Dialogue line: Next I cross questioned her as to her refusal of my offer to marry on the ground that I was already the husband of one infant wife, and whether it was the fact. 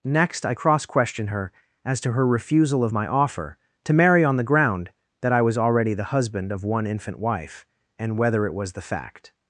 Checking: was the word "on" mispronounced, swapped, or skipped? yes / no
no